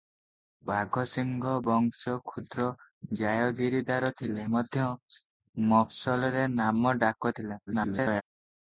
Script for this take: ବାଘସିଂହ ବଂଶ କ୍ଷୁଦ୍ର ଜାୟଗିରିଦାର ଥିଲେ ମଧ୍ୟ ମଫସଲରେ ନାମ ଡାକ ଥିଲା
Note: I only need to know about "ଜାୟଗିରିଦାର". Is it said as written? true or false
true